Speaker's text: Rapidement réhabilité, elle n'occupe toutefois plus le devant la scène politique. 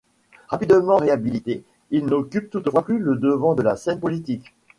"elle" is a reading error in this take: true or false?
true